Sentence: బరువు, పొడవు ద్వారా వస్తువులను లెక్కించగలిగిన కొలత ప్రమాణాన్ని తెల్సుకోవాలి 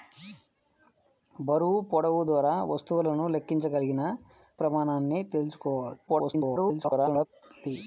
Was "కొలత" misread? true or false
true